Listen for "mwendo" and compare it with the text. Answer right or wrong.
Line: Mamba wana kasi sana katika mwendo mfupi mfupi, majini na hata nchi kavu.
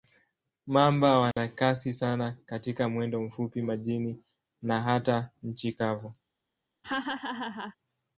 right